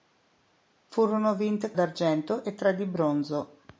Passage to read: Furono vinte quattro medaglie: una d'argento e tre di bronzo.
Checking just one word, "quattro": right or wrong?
wrong